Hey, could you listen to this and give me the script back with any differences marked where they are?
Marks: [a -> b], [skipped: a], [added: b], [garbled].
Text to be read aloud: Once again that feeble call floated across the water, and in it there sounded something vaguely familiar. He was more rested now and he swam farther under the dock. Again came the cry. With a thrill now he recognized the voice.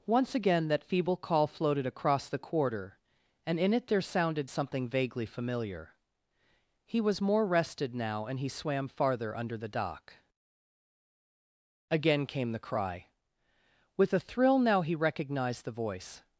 Once again that feeble call floated across the [water, -> quarter] and in it there sounded something vaguely familiar. He was more rested now and he swam farther under the dock. Again came the cry. With a thrill now he recognized the voice.